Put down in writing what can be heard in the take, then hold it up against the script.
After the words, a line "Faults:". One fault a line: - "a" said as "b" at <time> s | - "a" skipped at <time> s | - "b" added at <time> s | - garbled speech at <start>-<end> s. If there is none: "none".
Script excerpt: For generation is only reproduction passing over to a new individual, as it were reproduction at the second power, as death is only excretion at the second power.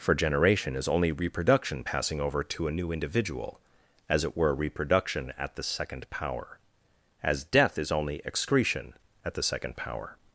For generation is only reproduction passing over to a new individual, as it were reproduction at the second power, as death is only excretion at the second power.
Faults:
none